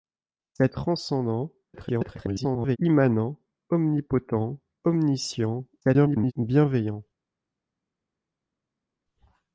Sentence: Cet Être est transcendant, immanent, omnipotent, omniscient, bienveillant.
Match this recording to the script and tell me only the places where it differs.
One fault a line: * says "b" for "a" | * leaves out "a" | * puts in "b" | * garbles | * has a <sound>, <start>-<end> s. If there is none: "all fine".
* leaves out "Être"
* garbles
* garbles